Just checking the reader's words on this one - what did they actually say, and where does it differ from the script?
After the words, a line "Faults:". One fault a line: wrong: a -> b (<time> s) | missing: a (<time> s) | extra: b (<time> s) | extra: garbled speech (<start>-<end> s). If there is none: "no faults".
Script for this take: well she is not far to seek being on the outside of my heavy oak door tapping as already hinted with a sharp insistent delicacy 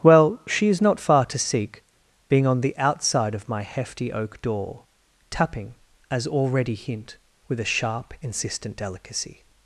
well she is not far to seek being on the outside of my hefty oak door tapping as already hint with a sharp insistent delicacy
Faults:
wrong: heavy -> hefty (3.6 s)
wrong: hinted -> hint (6.8 s)